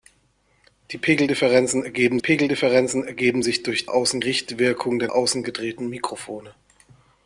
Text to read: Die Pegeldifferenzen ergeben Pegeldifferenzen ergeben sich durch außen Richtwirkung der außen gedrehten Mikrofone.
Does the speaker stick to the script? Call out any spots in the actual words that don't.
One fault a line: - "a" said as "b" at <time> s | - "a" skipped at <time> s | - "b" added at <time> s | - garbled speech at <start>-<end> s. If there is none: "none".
none